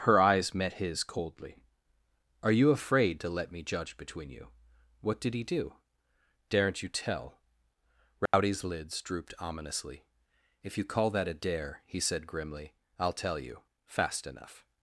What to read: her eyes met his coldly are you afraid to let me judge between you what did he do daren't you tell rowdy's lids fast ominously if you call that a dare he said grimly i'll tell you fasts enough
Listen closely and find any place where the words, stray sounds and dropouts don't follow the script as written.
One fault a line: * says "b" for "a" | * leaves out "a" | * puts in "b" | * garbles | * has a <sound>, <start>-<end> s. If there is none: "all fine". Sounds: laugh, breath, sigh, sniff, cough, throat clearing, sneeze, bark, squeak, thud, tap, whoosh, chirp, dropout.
* has a dropout, 8.3-8.3 s
* says "drooped" for "fast"
* says "fast" for "fasts"